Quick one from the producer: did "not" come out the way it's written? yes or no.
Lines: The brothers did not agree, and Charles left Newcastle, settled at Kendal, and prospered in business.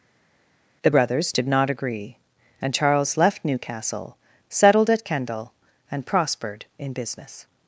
yes